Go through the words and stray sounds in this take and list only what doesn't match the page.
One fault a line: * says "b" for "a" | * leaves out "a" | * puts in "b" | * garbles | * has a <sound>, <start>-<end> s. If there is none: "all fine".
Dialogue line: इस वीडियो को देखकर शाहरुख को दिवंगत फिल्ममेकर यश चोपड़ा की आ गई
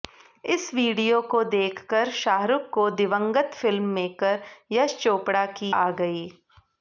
all fine